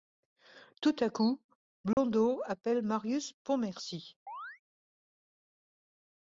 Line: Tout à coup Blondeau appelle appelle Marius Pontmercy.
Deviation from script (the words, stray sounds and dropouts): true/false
true